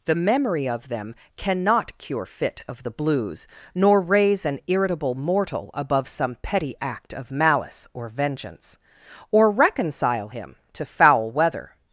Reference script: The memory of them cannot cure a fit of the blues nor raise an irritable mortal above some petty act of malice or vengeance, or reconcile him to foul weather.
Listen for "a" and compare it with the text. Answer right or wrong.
wrong